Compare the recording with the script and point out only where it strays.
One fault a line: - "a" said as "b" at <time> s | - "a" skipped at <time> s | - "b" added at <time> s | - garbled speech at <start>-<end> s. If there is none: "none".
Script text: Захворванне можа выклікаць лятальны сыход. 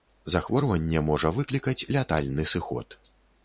none